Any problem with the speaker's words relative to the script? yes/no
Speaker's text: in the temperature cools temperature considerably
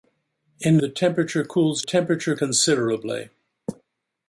no